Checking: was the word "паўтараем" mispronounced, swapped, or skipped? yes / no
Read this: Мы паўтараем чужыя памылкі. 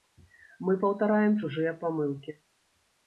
no